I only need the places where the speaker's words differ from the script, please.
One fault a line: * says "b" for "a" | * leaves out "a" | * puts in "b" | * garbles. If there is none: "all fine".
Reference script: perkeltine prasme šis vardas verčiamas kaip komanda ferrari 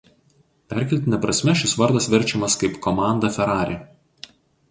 all fine